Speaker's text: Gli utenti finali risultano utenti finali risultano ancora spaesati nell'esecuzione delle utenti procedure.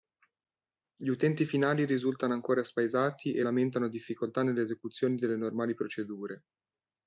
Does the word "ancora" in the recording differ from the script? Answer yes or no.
yes